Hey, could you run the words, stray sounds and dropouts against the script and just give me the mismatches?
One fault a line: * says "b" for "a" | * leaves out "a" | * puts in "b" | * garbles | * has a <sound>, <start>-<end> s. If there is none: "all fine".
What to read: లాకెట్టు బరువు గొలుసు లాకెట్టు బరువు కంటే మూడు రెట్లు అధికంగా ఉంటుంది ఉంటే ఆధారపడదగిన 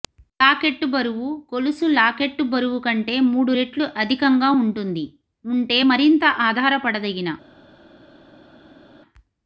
* puts in "మరింత"